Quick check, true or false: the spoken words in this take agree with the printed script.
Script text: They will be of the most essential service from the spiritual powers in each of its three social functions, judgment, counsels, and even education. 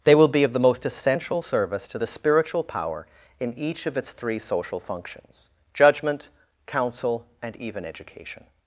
false